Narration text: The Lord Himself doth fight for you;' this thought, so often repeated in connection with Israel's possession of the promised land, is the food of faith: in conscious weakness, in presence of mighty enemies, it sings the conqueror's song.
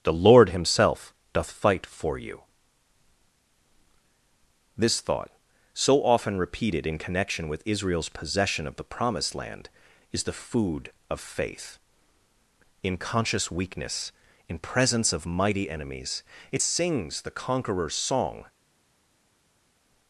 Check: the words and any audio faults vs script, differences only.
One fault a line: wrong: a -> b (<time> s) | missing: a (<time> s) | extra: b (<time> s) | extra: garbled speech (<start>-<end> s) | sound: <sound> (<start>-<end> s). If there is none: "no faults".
no faults